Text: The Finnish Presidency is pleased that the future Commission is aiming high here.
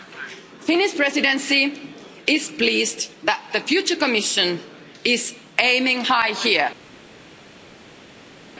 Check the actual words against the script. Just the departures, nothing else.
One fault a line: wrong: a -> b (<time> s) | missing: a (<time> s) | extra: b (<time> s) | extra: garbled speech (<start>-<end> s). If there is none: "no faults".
no faults